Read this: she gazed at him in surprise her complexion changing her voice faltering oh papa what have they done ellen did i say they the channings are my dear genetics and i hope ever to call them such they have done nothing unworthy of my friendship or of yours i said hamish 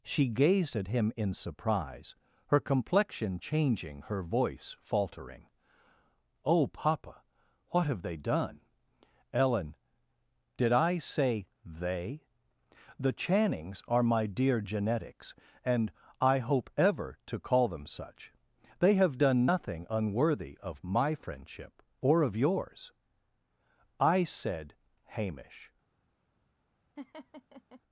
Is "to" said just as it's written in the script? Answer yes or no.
yes